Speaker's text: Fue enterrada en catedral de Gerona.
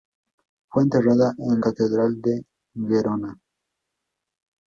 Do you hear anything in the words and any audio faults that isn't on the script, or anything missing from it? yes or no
no